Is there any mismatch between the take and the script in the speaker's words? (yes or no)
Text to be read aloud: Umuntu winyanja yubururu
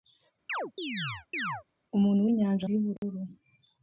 no